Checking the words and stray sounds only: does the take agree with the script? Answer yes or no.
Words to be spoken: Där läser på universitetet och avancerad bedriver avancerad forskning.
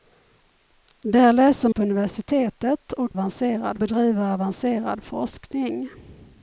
yes